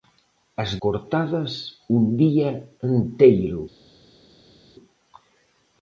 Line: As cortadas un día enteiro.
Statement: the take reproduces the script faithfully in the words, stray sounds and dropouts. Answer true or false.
true